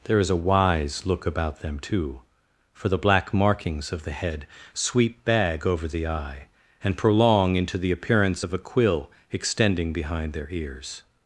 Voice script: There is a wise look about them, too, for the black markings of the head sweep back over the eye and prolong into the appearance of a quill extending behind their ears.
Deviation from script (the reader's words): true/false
true